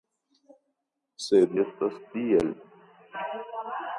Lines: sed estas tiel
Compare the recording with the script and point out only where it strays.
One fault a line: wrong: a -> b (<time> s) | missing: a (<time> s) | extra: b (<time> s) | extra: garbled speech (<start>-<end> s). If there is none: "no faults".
no faults